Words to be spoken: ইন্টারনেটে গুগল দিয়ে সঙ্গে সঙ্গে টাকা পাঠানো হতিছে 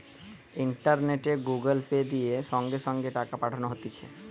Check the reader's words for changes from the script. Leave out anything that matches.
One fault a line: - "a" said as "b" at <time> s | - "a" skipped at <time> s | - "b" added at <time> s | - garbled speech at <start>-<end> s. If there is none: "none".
- "পে" added at 1.9 s